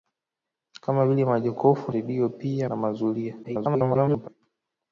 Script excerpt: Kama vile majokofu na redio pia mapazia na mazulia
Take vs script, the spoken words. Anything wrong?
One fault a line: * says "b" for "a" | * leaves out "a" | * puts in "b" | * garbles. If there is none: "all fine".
* leaves out "na"
* leaves out "mapazia"
* garbles